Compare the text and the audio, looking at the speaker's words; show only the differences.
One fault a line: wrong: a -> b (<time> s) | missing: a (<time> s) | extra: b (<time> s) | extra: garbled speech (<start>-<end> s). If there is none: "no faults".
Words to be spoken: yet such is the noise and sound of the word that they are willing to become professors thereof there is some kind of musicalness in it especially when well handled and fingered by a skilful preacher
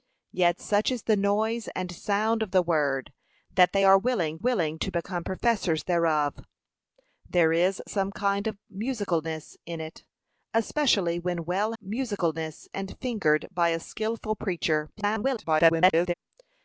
extra: willing (4.4 s)
wrong: handled -> musicalness (11.8 s)
extra: garbled speech (15.0-16.1 s)